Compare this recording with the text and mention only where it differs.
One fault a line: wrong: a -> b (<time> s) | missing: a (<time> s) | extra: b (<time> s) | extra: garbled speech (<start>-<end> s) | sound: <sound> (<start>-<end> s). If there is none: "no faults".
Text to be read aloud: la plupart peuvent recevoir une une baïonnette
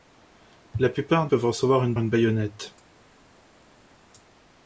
no faults